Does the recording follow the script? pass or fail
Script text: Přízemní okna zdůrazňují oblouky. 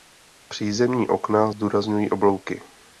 pass